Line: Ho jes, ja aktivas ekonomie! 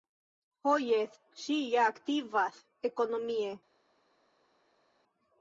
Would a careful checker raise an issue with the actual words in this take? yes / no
yes